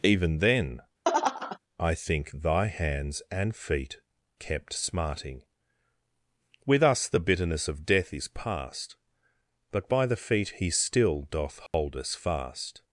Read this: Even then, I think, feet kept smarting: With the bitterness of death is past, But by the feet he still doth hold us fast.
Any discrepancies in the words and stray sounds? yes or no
yes